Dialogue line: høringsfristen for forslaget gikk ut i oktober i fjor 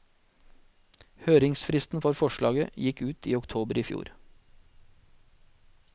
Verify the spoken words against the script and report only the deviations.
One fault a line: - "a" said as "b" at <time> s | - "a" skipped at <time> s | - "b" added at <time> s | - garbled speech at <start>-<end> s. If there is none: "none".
none